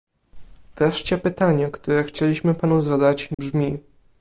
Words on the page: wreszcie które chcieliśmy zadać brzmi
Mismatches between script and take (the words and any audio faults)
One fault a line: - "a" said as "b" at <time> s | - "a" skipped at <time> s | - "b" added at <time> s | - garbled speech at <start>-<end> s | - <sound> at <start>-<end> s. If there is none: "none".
- "pytanie" added at 1.2 s
- "panu" added at 2.5 s
- dropout at 3.3-3.4 s